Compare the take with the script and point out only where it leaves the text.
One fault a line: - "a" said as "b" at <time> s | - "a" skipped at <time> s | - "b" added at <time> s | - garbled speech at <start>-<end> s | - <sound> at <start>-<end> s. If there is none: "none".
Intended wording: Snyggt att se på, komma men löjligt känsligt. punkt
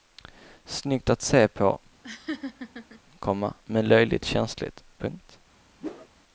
- laugh at 2.0-3.0 s
- whoosh at 5.8-6.1 s